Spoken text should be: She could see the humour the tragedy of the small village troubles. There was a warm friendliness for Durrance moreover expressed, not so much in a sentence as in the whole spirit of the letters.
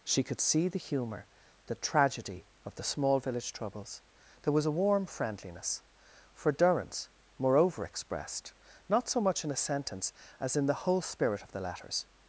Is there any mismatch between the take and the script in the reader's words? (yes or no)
no